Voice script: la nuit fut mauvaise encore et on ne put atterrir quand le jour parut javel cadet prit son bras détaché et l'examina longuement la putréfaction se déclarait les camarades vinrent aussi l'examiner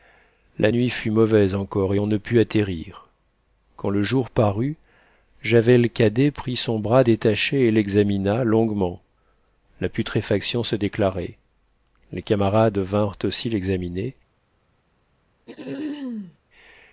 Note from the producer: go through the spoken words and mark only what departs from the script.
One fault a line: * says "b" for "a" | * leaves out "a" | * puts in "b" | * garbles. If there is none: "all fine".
all fine